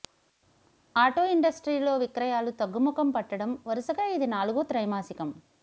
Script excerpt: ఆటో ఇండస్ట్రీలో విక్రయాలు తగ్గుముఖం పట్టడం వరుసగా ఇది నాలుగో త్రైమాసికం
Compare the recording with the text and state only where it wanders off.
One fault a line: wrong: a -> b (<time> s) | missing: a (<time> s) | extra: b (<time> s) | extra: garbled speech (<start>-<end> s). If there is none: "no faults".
no faults